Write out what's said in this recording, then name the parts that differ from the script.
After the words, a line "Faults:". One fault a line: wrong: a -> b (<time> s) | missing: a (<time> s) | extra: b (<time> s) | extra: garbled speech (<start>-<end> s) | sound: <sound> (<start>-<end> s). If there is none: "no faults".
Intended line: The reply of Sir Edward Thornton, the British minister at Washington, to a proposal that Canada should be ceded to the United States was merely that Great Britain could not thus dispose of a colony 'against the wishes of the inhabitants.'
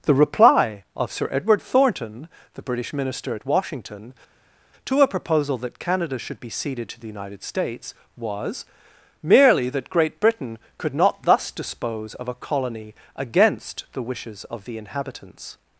The reply of Sir Edward Thornton, the British minister at Washington, to a proposal that Canada should be ceded to the United States was merely that Great Britain could not thus dispose of a colony 'against the wishes of the inhabitants.'
Faults:
no faults